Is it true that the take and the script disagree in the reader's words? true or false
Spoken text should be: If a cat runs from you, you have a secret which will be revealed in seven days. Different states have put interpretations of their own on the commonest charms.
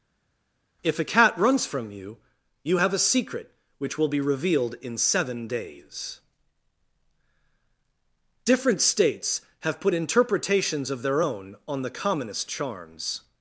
false